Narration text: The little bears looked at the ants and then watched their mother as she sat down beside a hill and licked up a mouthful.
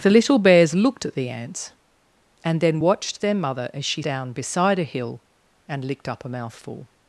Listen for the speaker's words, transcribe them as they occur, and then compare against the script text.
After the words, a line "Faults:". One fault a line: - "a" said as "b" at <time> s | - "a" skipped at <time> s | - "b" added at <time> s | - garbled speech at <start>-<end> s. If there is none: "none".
The little bears looked at the ants and then watched their mother as she down beside a hill and licked up a mouthful.
Faults:
- "sat" skipped at 4.0 s